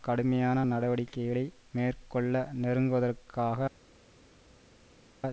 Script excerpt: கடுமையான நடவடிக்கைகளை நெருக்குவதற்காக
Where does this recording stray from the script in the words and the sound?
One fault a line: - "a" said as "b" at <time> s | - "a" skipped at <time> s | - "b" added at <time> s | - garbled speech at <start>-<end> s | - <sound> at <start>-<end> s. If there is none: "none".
- "மேற்கொள்ள" added at 1.7 s